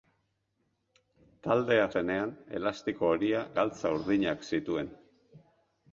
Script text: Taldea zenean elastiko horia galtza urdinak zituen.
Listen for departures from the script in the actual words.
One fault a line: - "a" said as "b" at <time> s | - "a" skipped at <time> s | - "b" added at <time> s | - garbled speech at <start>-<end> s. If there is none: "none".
none